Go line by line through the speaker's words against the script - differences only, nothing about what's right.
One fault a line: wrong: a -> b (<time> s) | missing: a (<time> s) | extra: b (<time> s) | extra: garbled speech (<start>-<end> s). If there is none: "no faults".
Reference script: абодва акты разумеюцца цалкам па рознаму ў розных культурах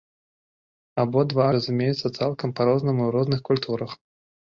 missing: акты (1.4 s)